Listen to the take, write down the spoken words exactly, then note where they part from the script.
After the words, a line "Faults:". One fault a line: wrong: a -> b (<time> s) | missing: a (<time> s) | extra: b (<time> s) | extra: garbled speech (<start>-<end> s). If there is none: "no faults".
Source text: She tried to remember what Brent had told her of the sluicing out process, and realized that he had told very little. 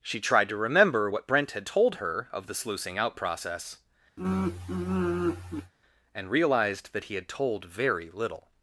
She tried to remember what Brent had told her of the sluicing out process, and realized that he had told very little.
Faults:
no faults